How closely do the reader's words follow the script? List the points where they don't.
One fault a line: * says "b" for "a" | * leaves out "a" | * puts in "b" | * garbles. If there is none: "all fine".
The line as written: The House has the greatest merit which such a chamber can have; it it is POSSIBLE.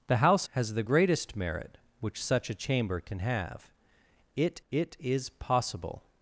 all fine